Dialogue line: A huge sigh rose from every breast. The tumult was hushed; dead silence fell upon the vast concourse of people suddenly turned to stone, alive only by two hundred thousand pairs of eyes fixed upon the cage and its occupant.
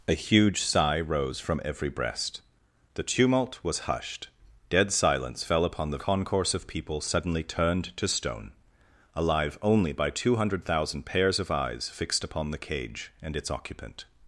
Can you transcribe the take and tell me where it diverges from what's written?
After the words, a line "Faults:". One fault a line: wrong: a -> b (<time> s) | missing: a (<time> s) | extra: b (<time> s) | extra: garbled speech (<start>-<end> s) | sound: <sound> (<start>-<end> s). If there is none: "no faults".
A huge sigh rose from every breast. The tumult was hushed; dead silence fell upon the concourse of people suddenly turned to stone, alive only by two hundred thousand pairs of eyes fixed upon the cage and its occupant.
Faults:
missing: vast (6.0 s)